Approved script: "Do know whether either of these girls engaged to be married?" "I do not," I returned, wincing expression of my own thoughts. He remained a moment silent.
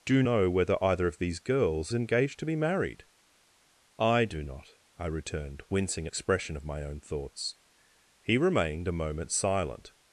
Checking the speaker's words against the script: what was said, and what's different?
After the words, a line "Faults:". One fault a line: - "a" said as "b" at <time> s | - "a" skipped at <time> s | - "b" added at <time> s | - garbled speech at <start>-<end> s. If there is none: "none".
"Do know whether either of these girls engaged to be married?" "I do not," I returned, wincing expression of my own thoughts. He remained a moment silent.
Faults:
none